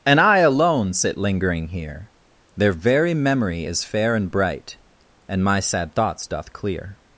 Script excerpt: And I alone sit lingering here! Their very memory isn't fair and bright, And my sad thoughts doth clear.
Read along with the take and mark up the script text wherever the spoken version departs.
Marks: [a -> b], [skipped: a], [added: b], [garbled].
And I alone sit lingering here! Their very memory [isn't -> is] fair and bright, And my sad thoughts doth clear.